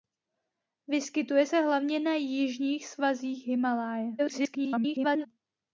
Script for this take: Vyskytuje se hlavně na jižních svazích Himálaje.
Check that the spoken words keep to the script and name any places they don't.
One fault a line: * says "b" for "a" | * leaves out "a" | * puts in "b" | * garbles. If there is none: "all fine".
* garbles